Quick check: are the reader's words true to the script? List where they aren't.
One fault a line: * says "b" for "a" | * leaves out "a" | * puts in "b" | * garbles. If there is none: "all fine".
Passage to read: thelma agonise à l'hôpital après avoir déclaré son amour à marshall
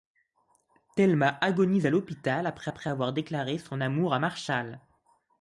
* puts in "après"